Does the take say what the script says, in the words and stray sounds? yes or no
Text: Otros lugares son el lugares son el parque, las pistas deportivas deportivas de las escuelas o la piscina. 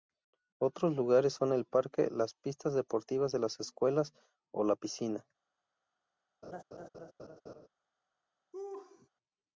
no